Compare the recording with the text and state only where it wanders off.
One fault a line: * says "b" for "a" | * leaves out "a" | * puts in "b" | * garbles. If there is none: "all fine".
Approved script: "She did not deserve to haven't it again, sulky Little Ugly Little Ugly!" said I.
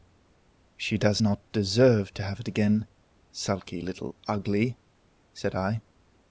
* says "does" for "did"
* says "have" for "haven't"
* leaves out "Little Ugly"